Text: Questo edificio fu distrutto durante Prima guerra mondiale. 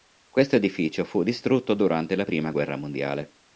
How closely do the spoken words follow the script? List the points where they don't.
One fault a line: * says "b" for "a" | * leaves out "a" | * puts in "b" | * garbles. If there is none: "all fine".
* puts in "la"